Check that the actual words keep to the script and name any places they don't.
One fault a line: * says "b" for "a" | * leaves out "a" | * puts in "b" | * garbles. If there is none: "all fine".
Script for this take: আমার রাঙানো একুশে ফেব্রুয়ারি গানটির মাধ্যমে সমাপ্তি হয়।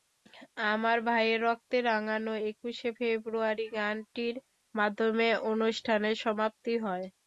* puts in "ভাইয়ের রক্তে"
* puts in "অনুষ্ঠানের"